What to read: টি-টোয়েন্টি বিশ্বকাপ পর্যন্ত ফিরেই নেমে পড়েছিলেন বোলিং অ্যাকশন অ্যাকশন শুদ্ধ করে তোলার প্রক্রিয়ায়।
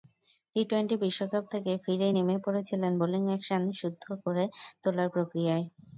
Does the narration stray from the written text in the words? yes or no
yes